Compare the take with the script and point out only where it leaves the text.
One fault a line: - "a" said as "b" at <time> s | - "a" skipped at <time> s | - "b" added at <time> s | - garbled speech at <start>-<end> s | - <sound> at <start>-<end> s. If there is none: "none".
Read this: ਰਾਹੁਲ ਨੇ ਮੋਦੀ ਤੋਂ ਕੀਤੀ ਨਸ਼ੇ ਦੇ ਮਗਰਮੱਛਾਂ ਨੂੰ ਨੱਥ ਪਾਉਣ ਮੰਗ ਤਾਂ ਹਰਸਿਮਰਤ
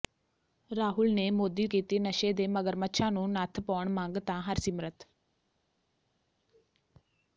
- "ਤੋਂ" skipped at 1.7 s